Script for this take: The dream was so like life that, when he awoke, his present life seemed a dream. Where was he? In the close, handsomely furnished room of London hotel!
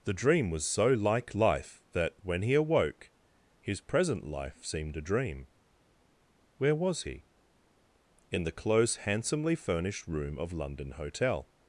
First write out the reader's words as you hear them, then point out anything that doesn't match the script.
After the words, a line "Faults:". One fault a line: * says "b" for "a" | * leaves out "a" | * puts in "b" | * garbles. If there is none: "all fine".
The dream was so like life that, when he awoke, his present life seemed a dream. Where was he? In the close, handsomely furnished room of London hotel!
Faults:
all fine